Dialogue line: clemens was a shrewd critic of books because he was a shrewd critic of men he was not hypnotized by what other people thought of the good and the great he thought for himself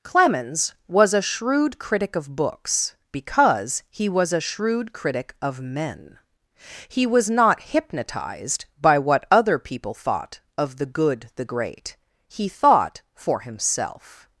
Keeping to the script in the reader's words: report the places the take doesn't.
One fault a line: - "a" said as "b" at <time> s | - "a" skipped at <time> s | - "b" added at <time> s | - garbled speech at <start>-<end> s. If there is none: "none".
- "and" skipped at 11.3 s